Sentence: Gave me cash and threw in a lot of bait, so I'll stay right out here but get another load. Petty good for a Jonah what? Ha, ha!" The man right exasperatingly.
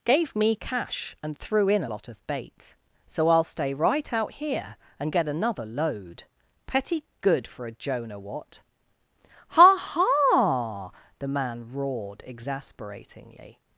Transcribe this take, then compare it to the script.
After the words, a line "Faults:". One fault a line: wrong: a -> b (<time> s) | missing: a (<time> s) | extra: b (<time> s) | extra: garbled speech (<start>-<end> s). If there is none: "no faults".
Gave me cash and threw in a lot of bait, so I'll stay right out here and get another load. Petty good for a Jonah what? Ha, ha!" The man roared exasperatingly.
Faults:
wrong: but -> and (5.0 s)
wrong: right -> roared (11.7 s)